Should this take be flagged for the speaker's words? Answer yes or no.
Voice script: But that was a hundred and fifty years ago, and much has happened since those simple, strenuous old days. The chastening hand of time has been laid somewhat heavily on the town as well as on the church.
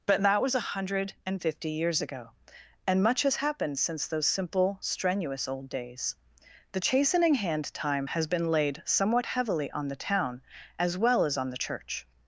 yes